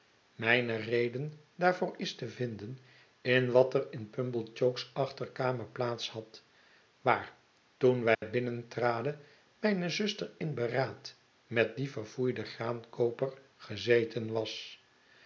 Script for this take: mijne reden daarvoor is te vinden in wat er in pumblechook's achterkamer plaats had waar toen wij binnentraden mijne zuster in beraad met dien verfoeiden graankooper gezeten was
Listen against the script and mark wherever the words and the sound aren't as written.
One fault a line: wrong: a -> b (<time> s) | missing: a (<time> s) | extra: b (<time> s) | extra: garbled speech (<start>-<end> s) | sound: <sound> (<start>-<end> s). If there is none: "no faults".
sound: dropout (8.1-8.2 s)